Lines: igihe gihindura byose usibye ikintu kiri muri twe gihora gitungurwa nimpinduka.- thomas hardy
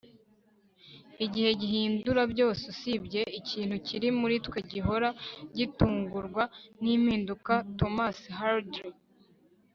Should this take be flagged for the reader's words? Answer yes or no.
no